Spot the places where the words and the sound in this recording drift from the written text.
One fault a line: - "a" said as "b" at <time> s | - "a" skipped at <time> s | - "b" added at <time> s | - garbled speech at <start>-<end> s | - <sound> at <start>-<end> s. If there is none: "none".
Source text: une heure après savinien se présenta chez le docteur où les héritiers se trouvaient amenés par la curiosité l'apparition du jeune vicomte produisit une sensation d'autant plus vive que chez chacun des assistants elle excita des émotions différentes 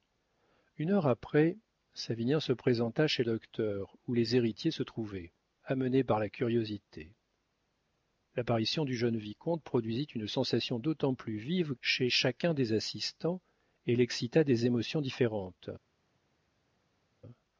- "le" skipped at 3.2 s
- "que" skipped at 11.7 s